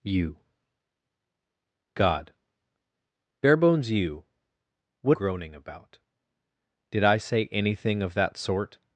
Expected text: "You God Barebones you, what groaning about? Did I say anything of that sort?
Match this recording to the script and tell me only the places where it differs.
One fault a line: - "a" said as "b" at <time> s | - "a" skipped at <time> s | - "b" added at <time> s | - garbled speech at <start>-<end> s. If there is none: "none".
none